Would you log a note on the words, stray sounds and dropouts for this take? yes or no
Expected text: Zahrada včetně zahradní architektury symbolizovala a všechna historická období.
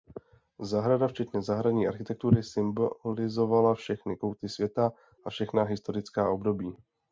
yes